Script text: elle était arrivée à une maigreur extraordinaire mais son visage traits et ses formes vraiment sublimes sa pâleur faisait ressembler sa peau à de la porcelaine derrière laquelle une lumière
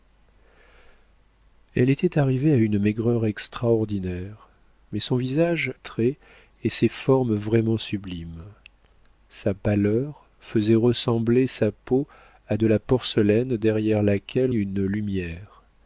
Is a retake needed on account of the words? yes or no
no